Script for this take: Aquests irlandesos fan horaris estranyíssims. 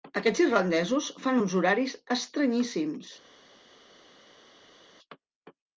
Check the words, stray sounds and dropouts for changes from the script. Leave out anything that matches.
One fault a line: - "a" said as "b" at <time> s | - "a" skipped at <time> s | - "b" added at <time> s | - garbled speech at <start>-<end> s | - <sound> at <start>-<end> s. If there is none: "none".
- "uns" added at 1.4 s